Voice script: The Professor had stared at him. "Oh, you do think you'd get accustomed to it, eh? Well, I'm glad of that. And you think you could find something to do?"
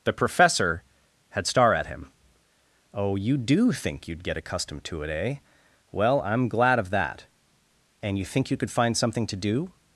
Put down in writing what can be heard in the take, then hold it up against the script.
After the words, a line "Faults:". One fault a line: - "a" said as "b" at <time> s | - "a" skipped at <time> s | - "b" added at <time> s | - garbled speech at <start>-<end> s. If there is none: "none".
The Professor had star at him. "Oh, you do think you'd get accustomed to it, eh? Well, I'm glad of that. And you think you could find something to do?"
Faults:
- "stared" said as "star" at 1.5 s